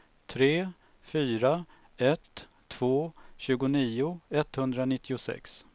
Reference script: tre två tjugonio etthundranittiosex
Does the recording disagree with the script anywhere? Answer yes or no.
yes